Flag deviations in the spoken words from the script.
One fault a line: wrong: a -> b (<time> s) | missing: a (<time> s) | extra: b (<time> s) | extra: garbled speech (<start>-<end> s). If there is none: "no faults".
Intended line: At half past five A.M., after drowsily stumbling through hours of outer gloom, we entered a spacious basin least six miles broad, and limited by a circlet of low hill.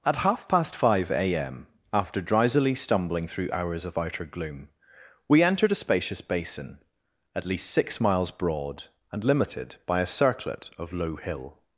extra: at (7.3 s)